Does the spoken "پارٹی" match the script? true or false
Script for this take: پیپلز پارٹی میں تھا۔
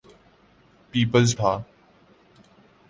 false